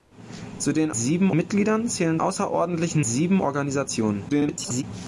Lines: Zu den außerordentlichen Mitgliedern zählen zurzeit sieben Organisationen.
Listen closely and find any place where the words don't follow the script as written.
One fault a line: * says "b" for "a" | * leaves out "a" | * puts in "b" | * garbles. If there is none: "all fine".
* says "sieben" for "außerordentlichen"
* says "außerordentlichen" for "zurzeit"
* garbles